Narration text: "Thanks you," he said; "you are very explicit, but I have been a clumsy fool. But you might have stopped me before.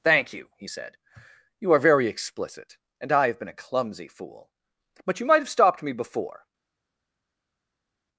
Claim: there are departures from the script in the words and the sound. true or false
true